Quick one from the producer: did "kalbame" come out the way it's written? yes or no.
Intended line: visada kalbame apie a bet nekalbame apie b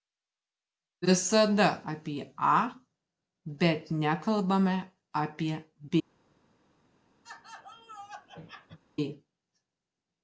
no